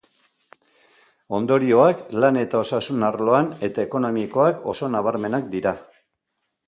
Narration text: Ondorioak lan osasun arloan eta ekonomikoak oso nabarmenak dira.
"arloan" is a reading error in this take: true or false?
false